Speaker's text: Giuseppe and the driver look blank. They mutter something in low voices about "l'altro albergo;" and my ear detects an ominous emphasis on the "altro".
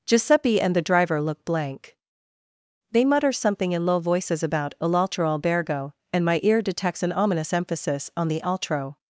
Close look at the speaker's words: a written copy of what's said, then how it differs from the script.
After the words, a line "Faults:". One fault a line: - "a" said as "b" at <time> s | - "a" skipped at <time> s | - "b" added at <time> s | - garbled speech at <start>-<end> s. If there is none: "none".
Giuseppe and the driver look blank. They mutter something in low voices about "l'altro albergo;" and my ear detects an ominous emphasis on the "altro".
Faults:
none